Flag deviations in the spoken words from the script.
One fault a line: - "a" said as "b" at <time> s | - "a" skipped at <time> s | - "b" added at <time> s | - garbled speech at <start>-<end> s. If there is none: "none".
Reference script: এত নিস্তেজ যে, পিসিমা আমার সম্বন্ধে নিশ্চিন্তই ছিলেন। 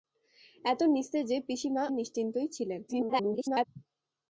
- "আমার সম্বন্ধে" skipped at 1.8 s
- garbled speech at 2.9-3.6 s